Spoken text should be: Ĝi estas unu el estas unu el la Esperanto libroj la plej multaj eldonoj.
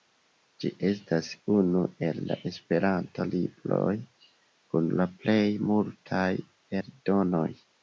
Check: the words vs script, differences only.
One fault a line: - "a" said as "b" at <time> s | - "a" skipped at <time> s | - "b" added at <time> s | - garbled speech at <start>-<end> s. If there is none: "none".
- "estas unu el" skipped at 2.2 s
- "kun" added at 4.7 s